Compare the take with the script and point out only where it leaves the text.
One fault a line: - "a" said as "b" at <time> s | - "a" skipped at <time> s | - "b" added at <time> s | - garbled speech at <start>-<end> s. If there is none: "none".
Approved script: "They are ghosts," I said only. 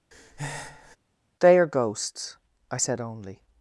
none